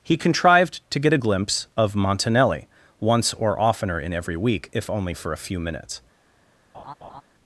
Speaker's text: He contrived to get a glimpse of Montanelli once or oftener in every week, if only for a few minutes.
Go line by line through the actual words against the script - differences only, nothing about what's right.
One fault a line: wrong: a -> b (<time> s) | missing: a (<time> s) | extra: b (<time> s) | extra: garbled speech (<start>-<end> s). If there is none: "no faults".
no faults